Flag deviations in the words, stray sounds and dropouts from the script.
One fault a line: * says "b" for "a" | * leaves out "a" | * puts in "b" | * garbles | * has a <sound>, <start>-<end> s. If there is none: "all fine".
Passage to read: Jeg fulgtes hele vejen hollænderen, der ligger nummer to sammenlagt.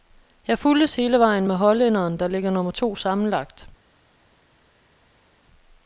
* puts in "med"